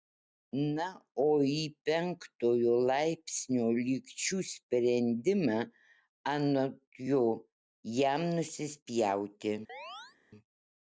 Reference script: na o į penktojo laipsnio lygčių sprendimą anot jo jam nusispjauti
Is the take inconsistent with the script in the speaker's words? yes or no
no